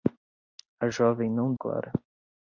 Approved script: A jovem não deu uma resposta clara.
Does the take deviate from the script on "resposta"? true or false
true